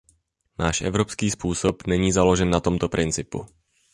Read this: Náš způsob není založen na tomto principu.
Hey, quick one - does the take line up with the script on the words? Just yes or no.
no